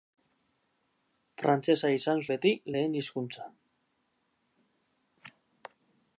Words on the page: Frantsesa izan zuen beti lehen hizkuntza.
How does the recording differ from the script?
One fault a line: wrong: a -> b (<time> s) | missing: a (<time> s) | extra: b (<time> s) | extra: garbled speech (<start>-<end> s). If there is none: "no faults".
missing: zuen (2.2 s)